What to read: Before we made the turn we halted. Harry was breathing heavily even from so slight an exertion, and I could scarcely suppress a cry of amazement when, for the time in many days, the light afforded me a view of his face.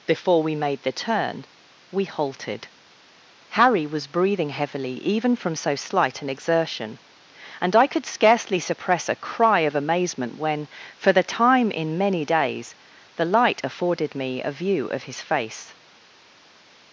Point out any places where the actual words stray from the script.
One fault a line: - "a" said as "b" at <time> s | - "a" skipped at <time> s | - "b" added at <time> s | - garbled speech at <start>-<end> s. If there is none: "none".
none